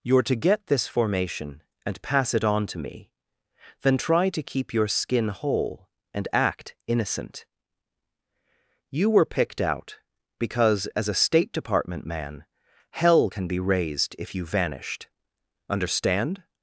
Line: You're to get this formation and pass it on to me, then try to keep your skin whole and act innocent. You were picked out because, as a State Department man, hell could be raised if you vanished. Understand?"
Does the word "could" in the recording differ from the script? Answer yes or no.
yes